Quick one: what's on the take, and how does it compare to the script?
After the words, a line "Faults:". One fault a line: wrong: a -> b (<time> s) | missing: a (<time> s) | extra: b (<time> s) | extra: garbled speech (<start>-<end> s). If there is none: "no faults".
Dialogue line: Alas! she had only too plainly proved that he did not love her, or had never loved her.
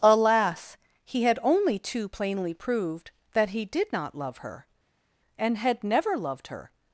Alas! he had only too plainly proved that he did not love her, and had never loved her.
Faults:
wrong: she -> he (1.1 s)
wrong: or -> and (5.4 s)